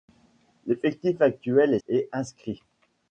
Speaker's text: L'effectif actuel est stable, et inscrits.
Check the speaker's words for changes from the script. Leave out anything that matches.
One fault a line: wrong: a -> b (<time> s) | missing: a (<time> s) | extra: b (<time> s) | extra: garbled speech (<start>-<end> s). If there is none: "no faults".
missing: stable (1.8 s)